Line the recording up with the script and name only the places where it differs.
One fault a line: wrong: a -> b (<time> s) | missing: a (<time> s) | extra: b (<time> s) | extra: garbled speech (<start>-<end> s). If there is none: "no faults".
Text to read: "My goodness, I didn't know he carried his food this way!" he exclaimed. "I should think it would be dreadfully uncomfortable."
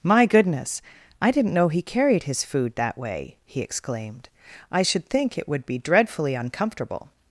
wrong: this -> that (2.8 s)